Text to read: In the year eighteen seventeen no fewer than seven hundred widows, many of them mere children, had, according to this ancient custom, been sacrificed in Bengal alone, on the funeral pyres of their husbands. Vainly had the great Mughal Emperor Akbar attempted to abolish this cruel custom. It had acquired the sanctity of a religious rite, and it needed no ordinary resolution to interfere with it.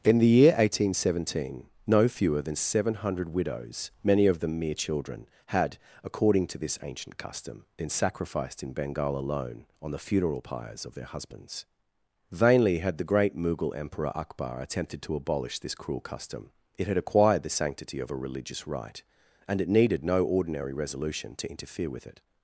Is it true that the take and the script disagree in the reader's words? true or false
false